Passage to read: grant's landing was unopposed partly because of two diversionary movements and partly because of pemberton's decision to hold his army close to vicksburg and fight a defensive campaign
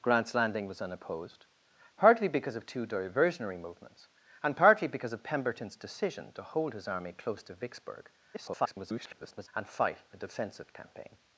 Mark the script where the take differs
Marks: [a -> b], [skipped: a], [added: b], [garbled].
grant's landing was unopposed partly because of two diversionary movements and partly because of pemberton's decision to hold his army close to vicksburg [garbled] and fight a defensive campaign